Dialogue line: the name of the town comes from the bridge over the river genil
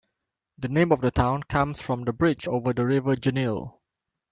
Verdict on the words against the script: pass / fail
pass